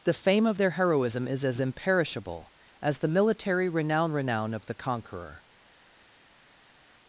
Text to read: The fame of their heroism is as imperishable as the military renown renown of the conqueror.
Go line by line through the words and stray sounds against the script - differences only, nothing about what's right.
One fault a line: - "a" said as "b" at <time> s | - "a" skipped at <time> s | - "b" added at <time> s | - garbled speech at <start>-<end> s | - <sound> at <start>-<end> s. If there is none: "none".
none